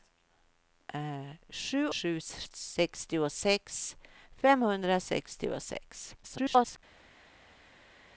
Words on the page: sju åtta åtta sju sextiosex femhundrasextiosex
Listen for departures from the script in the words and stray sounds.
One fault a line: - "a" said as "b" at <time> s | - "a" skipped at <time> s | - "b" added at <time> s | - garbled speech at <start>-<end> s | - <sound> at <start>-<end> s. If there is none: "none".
- "åtta åtta" skipped at 1.9 s
- garbled speech at 6.2-6.8 s